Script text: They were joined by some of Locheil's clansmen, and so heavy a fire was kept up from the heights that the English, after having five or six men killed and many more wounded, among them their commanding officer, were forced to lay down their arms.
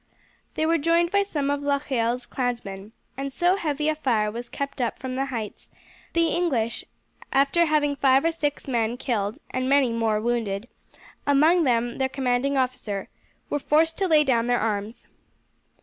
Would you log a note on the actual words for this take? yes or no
yes